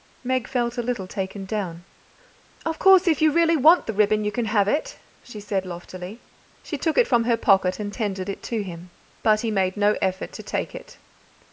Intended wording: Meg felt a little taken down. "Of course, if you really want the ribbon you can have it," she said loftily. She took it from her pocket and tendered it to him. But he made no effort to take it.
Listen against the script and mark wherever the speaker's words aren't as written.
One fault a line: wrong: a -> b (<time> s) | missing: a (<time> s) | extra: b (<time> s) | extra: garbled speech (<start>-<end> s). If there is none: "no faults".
no faults